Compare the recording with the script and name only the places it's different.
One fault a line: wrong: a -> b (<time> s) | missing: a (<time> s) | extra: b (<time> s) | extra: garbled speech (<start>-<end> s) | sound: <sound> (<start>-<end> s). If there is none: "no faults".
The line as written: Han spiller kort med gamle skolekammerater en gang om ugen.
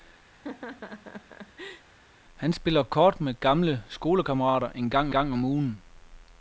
sound: laugh (0.3-1.9 s)
extra: gang (5.1 s)